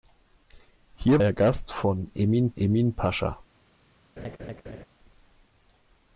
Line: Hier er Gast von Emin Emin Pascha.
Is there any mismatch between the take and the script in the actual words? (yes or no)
no